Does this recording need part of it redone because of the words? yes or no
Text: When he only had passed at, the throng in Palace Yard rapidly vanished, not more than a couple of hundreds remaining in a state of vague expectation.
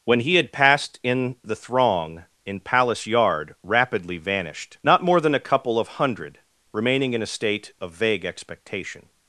yes